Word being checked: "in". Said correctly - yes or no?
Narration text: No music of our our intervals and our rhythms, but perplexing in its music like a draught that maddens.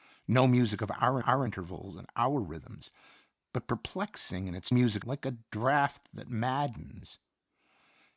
yes